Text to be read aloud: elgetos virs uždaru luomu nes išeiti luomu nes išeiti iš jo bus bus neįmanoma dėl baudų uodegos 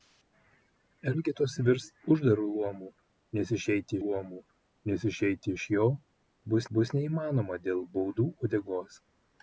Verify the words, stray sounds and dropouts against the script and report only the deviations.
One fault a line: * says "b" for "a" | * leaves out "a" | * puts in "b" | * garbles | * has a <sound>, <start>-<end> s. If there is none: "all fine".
all fine